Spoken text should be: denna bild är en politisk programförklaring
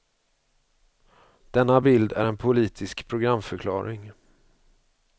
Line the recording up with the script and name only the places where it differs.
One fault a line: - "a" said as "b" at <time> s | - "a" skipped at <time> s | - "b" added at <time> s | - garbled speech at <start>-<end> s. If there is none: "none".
none